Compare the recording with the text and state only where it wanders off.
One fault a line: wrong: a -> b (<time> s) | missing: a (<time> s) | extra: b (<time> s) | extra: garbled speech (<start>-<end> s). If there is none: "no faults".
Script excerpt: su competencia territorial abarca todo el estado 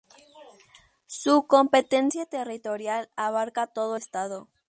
missing: el (4.0 s)